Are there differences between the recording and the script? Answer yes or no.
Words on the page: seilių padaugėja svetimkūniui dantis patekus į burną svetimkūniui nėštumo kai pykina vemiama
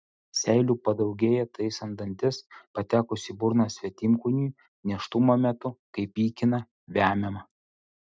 yes